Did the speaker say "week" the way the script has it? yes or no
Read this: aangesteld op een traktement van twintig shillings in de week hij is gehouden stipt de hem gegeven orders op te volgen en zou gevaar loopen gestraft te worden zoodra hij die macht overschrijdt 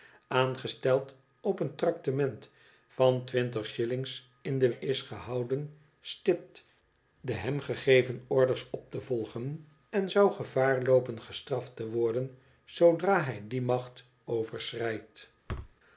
no